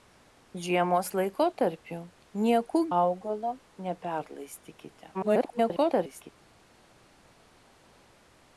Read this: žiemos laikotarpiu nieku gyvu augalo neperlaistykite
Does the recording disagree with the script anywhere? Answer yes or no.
yes